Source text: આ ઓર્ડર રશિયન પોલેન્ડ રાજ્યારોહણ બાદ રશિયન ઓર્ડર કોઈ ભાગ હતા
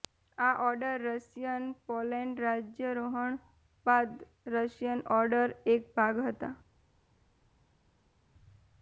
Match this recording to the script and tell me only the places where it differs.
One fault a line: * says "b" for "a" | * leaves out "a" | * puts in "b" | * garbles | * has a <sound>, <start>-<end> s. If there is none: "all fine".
* says "એક" for "કોઈ"